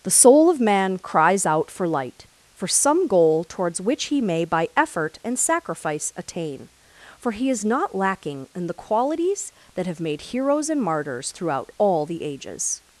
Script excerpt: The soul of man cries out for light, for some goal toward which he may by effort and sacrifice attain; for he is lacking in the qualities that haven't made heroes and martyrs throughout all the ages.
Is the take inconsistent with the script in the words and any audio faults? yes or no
yes